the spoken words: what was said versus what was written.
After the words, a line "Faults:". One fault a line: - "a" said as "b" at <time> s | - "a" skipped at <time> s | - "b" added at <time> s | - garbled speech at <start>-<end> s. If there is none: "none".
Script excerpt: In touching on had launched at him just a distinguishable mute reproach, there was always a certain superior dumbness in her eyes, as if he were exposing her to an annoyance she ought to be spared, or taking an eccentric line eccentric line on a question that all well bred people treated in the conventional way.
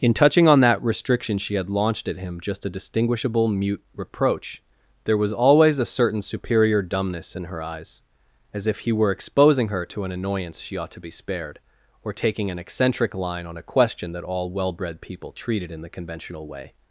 In touching on that restriction she had launched at him just a distinguishable mute reproach, there was always a certain superior dumbness in her eyes, as if he were exposing her to an annoyance she ought to be spared, or taking an eccentric line on a question that all well bred people treated in the conventional way.
Faults:
- "that restriction she" added at 0.6 s
- "eccentric line" skipped at 13.4 s